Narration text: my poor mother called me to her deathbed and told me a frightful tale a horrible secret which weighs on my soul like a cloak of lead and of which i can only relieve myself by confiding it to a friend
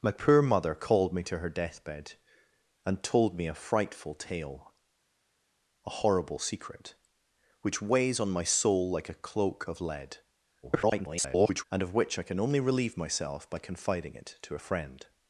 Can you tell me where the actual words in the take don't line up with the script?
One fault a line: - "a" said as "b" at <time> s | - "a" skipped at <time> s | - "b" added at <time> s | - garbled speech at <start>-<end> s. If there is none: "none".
- garbled speech at 10.6-11.6 s